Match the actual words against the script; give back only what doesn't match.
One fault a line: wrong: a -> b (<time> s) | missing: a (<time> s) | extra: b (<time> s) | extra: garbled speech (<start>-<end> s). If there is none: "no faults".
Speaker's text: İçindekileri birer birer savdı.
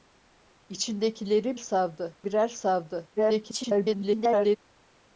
wrong: birer -> savdı (1.5 s)
extra: garbled speech (3.2-4.6 s)